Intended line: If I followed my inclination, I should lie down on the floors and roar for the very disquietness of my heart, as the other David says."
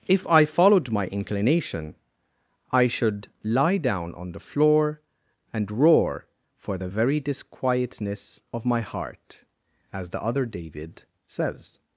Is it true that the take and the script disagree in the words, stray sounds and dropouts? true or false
true